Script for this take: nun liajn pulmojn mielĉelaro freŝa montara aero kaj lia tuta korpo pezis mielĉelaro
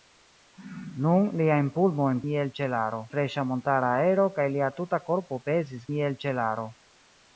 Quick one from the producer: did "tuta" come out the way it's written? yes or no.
yes